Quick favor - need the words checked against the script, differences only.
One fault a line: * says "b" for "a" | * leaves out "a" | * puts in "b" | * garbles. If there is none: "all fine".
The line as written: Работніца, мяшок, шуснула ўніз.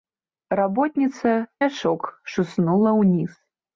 all fine